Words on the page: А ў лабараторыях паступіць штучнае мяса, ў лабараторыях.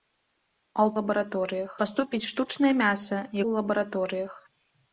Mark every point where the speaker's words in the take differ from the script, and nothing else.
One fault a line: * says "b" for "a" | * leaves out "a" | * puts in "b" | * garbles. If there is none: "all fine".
all fine